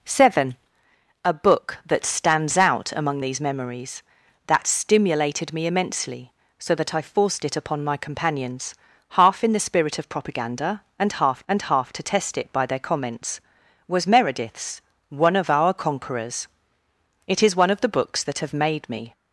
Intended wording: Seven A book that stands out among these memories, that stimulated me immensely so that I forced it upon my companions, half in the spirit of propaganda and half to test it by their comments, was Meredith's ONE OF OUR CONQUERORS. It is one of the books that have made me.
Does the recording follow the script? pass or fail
fail